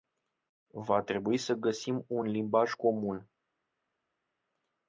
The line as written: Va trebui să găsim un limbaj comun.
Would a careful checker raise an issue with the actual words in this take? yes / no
no